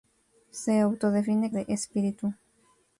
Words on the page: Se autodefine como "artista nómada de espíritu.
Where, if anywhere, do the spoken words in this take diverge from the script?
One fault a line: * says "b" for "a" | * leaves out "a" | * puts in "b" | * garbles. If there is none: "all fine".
* leaves out "como artista nómada"